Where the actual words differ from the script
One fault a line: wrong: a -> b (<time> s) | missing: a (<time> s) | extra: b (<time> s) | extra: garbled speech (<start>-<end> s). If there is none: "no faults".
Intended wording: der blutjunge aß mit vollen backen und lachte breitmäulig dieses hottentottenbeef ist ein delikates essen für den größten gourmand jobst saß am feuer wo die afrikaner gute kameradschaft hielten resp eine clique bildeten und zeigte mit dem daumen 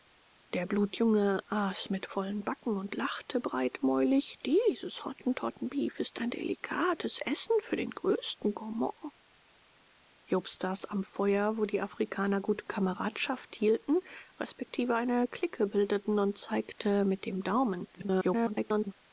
extra: garbled speech (17.9-18.9 s)